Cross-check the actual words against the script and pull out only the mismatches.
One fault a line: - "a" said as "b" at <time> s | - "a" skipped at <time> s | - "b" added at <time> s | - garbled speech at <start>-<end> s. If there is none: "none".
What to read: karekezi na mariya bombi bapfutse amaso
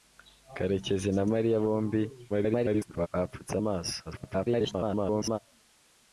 - garbled speech at 2.3-3.1 s
- garbled speech at 4.1-5.4 s